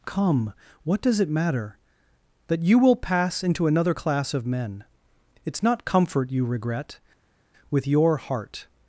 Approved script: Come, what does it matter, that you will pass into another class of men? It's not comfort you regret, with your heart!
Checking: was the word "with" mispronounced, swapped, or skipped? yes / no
no